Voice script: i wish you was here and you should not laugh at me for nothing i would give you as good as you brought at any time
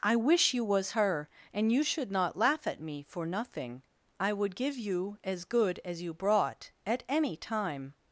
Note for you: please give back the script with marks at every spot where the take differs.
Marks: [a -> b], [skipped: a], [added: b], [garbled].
i wish you was [here -> her] and you should not laugh at me for nothing i would give you as good as you brought at any time